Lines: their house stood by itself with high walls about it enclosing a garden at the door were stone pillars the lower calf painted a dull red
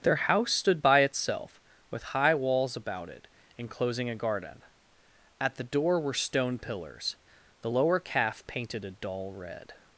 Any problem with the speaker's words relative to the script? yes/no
no